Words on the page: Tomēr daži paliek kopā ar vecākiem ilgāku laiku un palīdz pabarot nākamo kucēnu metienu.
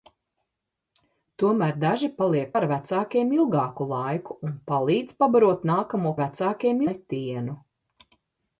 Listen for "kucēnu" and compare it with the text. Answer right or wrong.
wrong